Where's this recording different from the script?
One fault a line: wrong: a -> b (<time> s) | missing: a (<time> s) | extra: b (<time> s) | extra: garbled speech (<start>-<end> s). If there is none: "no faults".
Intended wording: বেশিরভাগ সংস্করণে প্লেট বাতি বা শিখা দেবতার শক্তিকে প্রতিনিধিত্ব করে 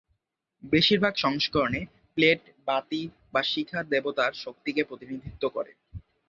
no faults